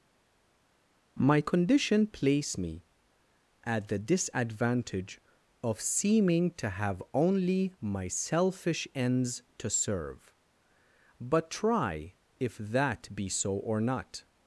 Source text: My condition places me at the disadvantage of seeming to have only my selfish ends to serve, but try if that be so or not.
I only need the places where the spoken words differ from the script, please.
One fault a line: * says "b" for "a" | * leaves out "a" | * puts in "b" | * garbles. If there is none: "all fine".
* says "place" for "places"